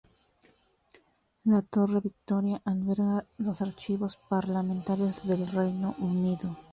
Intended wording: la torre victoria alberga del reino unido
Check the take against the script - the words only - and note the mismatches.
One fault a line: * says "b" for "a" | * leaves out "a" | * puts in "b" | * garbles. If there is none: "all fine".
* puts in "los archivos parlamentarios"